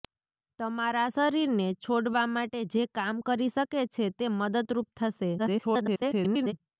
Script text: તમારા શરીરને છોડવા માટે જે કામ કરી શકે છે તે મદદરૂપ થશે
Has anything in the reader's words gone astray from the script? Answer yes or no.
yes